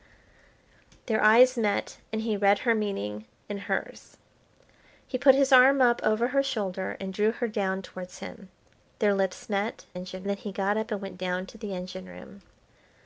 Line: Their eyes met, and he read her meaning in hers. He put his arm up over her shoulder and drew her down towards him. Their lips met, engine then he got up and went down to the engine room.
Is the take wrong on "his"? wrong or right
right